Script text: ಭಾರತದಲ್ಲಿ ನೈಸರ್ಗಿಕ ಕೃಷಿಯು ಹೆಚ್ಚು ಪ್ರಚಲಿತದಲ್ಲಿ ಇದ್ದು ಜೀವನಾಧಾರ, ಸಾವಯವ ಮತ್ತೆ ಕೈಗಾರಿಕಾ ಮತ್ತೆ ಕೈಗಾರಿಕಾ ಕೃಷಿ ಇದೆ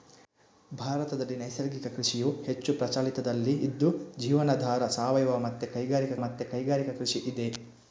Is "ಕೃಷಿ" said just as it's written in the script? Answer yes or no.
yes